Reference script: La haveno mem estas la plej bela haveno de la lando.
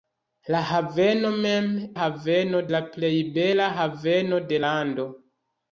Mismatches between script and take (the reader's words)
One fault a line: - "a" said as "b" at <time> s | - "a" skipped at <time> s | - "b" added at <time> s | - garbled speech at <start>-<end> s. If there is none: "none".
- "estas" said as "haveno" at 2.0 s
- "la" skipped at 4.7 s